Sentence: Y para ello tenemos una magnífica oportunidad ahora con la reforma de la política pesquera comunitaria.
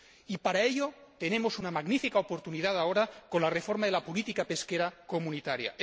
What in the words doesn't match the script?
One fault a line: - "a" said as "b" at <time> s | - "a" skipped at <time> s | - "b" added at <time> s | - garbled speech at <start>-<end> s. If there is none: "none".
none